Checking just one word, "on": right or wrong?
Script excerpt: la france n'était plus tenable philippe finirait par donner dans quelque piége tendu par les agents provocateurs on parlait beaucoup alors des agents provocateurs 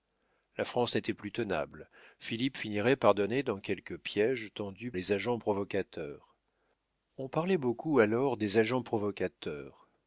right